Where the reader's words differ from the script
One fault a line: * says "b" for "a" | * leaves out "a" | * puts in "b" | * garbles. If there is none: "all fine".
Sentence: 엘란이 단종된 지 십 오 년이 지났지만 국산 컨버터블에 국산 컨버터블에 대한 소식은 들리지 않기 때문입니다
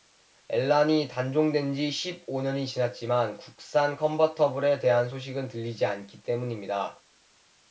* leaves out "국산 컨버터블에"